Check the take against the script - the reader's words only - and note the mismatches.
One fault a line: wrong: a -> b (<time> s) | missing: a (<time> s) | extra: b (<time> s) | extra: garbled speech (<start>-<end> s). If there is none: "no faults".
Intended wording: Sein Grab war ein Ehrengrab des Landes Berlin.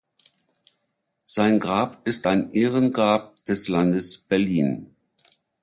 wrong: war -> ist (2.1 s)